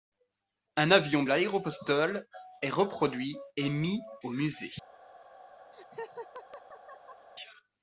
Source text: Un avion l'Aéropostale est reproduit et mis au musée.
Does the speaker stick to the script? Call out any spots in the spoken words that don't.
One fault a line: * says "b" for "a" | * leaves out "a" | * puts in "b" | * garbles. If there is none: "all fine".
all fine